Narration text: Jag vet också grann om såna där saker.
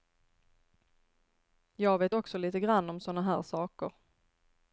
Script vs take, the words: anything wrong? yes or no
yes